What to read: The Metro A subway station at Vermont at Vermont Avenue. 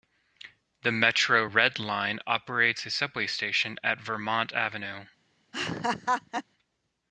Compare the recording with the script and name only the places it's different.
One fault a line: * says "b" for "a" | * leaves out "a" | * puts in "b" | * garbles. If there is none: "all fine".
* puts in "Red Line operates"
* leaves out "at Vermont"